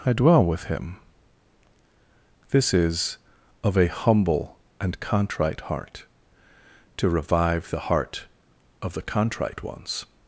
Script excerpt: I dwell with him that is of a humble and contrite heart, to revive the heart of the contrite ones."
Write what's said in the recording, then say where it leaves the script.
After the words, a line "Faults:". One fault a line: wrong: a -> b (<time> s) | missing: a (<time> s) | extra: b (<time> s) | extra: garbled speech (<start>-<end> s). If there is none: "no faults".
I dwell with him this is of a humble and contrite heart, to revive the heart of the contrite ones."
Faults:
wrong: that -> this (2.5 s)